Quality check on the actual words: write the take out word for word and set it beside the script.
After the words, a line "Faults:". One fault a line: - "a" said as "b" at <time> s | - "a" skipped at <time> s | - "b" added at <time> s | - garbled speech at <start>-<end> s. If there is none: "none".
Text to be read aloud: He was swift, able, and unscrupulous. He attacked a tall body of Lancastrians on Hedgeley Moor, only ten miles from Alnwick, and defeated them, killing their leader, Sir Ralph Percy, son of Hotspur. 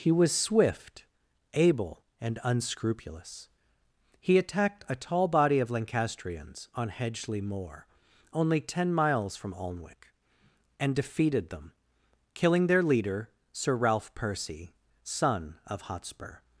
He was swift, able, and unscrupulous. He attacked a tall body of Lancastrians on Hedgeley Moor, only ten miles from Alnwick, and defeated them, killing their leader, Sir Ralph Percy, son of Hotspur.
Faults:
none